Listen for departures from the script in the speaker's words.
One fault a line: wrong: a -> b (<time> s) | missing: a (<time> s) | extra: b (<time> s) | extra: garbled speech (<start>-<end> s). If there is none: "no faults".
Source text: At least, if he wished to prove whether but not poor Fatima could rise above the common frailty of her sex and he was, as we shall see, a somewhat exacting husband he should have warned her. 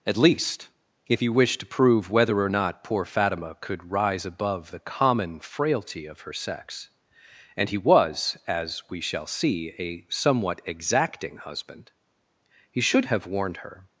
wrong: but -> or (2.4 s)